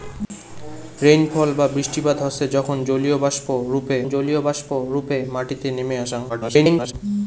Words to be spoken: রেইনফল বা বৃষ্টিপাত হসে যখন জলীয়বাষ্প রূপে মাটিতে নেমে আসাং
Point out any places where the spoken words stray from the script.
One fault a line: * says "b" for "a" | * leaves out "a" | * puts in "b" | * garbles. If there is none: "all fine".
* puts in "জলীয়বাষ্প রূপে"
* garbles